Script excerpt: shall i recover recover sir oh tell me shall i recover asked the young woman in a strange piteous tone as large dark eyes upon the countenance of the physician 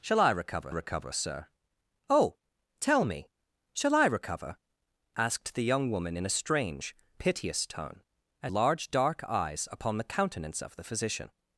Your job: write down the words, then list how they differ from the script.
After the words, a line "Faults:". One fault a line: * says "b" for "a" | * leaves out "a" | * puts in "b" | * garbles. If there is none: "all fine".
shall i recover recover sir oh tell me shall i recover asked the young woman in a strange piteous tone as large dark eyes upon the countenance of the physician
Faults:
all fine